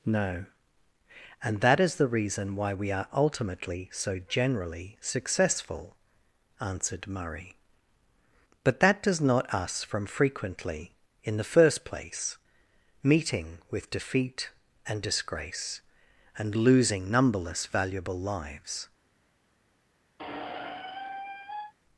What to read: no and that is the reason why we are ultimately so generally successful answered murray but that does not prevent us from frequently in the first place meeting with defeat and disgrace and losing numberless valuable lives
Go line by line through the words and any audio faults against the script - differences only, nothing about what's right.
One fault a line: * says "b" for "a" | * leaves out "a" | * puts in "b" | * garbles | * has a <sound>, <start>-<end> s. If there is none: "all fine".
* leaves out "prevent"
* has a squeak, 20.2-21.7 s